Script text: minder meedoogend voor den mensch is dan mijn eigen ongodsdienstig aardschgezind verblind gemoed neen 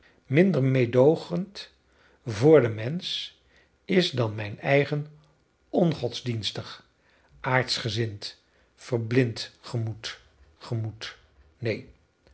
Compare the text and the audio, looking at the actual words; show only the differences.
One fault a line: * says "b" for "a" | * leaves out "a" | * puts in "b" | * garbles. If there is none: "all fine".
* puts in "gemoed"